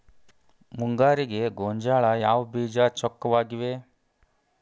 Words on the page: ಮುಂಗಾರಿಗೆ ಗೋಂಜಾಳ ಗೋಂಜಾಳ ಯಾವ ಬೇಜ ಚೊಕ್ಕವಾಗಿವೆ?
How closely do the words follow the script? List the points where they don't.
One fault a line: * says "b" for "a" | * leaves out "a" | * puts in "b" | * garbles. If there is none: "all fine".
* leaves out "ಗೋಂಜಾಳ"